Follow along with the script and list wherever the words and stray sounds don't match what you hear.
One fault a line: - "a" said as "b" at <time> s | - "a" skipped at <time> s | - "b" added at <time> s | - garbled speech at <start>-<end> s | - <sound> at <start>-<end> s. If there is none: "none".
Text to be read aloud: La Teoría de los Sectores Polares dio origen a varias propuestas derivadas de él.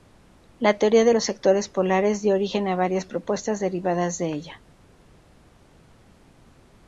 - "él" said as "ella" at 4.3 s